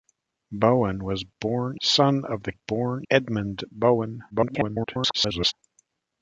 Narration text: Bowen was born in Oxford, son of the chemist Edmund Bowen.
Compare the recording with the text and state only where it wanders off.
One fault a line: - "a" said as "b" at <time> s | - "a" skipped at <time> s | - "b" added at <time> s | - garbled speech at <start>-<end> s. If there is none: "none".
- "in Oxford" skipped at 1.8 s
- "chemist" said as "born" at 2.5 s
- garbled speech at 4.3-5.5 s